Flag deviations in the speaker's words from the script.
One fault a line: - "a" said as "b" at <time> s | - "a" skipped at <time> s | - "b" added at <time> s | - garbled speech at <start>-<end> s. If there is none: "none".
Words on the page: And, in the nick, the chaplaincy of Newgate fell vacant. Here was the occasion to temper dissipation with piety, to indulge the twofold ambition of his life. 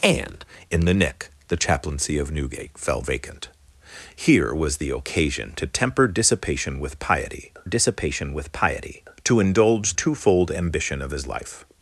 - "dissipation with piety" added at 7.6 s
- "the" skipped at 9.9 s